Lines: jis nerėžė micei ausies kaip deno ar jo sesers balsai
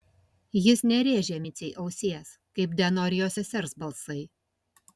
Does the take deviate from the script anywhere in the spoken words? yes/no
no